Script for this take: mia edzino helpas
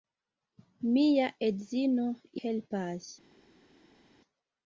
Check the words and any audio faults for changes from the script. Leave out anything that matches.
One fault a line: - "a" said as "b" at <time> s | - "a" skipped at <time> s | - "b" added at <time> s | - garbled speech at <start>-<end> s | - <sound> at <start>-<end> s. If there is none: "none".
none